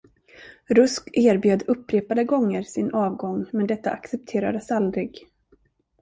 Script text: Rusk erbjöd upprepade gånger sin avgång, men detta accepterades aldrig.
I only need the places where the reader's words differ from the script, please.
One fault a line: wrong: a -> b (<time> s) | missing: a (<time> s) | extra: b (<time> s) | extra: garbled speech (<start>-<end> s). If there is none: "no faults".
no faults